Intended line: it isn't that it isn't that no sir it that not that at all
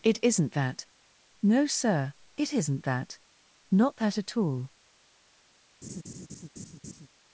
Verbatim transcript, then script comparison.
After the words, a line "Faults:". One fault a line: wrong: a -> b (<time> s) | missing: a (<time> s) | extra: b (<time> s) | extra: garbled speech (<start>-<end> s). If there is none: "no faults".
it isn't that no sir it isn't that not that at all
Faults:
missing: it isn't that (0.9 s)
extra: isn't (2.5 s)